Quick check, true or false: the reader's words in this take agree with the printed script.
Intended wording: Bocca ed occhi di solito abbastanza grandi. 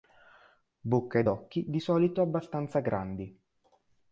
true